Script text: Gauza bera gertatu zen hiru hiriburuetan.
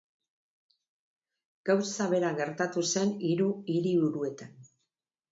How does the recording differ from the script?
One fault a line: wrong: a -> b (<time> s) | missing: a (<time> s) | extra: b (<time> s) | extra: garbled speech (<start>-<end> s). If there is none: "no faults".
no faults